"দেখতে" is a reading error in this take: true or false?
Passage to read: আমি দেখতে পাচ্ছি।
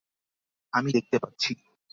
false